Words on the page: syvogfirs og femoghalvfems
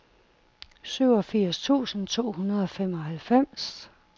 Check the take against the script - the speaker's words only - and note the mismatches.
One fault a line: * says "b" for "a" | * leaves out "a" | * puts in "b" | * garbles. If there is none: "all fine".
* puts in "tusind to hundrede"